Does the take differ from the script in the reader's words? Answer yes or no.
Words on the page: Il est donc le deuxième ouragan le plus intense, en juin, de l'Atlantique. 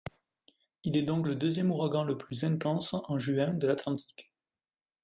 no